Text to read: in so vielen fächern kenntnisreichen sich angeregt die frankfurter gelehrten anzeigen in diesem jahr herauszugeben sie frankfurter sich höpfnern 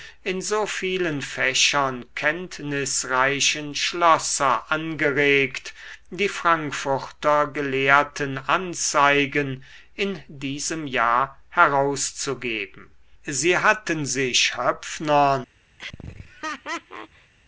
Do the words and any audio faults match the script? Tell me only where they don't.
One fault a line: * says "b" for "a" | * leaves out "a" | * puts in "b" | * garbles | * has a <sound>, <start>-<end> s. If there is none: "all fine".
* says "schlosser" for "sich"
* says "hatten" for "frankfurter"
* has a laugh, 15.8-17.3 s